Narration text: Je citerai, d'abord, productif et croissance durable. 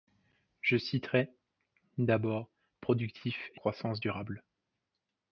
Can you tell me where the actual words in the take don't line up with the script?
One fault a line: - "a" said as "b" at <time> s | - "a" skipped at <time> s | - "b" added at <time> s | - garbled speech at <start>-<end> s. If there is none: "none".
none